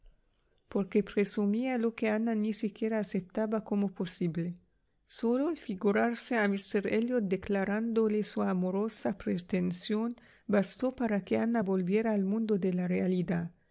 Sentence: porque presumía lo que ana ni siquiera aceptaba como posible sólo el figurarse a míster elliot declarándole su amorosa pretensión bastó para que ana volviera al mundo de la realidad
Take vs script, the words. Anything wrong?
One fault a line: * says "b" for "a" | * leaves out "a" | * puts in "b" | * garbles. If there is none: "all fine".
all fine